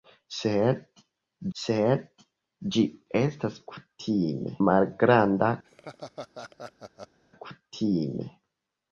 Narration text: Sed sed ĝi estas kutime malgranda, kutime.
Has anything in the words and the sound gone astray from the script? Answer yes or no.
yes